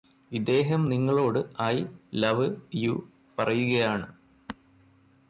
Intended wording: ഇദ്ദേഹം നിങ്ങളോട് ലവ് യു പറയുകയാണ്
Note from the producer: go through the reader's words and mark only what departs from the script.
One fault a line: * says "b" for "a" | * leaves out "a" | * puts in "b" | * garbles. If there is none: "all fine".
* puts in "ഐ"